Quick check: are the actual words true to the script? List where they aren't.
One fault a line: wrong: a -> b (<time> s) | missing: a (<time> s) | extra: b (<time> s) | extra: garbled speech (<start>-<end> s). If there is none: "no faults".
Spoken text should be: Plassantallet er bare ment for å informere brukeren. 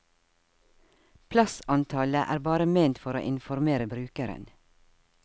no faults